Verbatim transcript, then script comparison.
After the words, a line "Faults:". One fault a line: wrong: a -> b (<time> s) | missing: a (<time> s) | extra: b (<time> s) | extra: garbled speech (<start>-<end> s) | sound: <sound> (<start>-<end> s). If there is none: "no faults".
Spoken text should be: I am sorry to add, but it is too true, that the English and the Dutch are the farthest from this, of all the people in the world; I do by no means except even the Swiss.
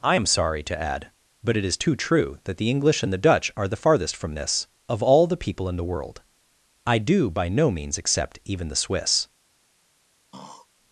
I am sorry to add, but it is too true, that the English and the Dutch are the farthest from this, of all the people in the world; I do by no means except even the Swiss.
Faults:
sound: throat clearing (10.3-10.7 s)